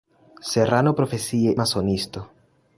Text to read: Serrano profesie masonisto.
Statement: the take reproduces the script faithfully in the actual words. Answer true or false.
true